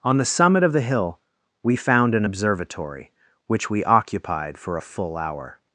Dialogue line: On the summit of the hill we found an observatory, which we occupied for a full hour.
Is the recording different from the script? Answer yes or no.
no